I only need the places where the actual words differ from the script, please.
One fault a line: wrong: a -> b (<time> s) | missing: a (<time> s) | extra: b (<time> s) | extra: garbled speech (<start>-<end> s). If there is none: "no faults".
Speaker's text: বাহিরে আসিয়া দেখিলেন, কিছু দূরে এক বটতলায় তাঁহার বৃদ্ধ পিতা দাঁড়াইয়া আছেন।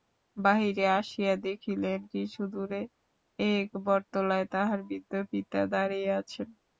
no faults